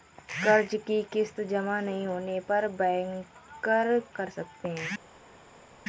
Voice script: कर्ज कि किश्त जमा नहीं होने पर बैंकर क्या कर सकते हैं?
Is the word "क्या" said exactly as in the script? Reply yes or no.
no